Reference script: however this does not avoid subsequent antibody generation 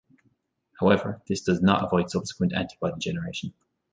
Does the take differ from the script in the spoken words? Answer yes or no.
no